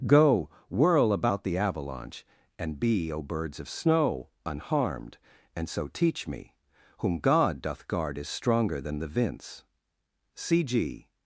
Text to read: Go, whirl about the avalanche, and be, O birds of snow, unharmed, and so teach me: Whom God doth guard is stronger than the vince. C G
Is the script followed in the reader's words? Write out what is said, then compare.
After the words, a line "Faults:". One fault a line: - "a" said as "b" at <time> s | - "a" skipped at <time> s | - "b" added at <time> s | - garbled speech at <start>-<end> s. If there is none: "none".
Go, whirl about the avalanche, and be, O birds of snow, unharmed, and so teach me: Whom God doth guard is stronger than the vince. C G
Faults:
none